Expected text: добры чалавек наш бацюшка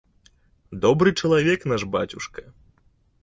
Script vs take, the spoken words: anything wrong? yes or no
no